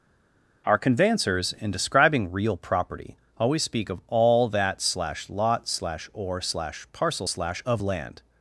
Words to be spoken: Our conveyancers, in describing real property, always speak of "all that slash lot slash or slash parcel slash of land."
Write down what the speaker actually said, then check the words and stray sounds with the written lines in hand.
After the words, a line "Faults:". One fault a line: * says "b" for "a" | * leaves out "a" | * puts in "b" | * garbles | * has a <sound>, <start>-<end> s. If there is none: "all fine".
Our conveyancers, in describing real property, always speak of "all that slash lot slash or slash parcel slash of land."
Faults:
all fine